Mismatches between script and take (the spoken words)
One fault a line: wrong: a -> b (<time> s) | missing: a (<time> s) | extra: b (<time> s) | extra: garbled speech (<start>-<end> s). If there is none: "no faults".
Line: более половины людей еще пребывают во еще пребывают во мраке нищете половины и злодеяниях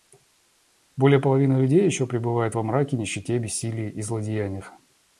missing: еще пребывают во (2.6 s)
wrong: половины -> бессилии (3.4 s)